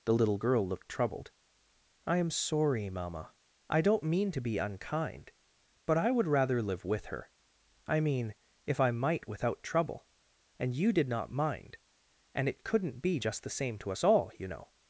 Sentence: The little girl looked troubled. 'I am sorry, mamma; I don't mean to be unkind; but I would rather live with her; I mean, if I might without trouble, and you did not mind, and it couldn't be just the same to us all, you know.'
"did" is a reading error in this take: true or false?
false